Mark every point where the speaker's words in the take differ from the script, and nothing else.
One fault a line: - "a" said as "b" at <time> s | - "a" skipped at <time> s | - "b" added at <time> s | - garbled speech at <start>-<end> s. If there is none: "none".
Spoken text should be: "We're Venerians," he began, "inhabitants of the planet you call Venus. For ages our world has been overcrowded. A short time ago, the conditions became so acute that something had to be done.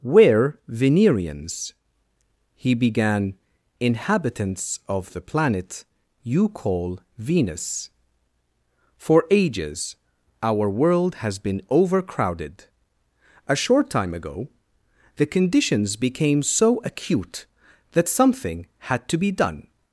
none